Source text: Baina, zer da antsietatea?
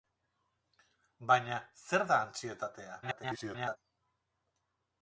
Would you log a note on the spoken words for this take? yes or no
yes